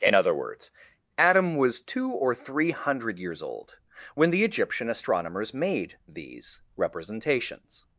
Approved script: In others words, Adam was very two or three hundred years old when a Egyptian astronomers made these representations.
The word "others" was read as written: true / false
false